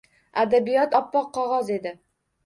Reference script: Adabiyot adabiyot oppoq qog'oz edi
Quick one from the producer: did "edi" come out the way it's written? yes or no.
yes